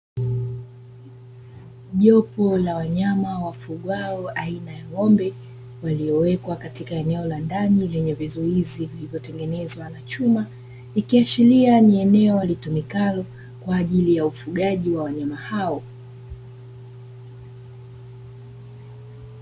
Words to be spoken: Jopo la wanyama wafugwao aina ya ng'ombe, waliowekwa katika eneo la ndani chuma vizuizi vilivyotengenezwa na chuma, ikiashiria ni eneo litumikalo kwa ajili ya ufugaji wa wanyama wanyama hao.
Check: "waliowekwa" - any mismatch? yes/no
no